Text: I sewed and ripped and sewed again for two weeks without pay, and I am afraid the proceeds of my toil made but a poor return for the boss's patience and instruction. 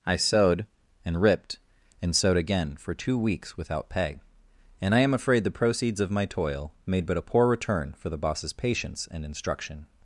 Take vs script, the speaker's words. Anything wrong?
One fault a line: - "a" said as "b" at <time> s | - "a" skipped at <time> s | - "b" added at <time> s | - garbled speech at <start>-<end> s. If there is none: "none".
none